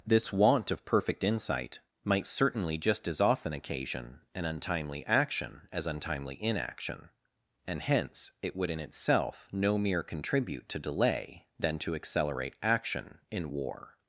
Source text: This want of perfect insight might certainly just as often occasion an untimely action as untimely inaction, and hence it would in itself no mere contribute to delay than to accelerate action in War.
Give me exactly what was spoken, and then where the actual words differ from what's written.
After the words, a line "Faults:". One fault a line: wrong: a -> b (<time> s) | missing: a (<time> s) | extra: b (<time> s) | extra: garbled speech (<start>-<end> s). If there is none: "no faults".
This want of perfect insight might certainly just as often occasion an untimely action as untimely inaction, and hence it would in itself no mere contribute to delay than to accelerate action in War.
Faults:
no faults